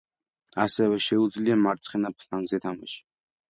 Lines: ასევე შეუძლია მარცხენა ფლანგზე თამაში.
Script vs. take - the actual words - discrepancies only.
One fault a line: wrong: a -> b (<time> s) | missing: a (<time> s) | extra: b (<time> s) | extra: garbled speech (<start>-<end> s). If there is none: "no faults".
no faults